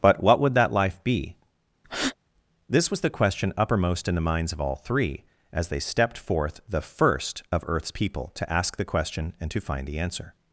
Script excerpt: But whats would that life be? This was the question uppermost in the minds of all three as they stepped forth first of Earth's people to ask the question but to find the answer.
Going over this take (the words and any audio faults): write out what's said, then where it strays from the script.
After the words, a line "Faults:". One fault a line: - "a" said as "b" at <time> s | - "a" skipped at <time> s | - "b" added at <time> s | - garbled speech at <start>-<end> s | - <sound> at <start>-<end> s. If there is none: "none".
But what would that life be? This was the question uppermost in the minds of all three as they stepped forth the first of Earth's people to ask the question and to find the answer.
Faults:
- "whats" said as "what" at 0.2 s
- breath at 1.8-2.2 s
- "the" added at 6.7 s
- "but" said as "and" at 9.4 s